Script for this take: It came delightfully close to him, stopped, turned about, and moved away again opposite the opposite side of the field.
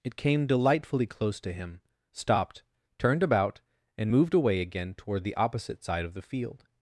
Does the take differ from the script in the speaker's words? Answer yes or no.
yes